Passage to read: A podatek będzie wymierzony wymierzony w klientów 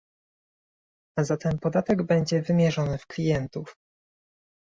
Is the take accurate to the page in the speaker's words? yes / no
no